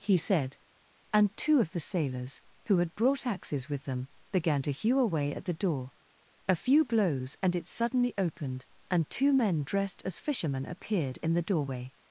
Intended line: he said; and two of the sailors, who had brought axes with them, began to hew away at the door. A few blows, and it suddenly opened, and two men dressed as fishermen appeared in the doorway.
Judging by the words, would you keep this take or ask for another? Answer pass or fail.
pass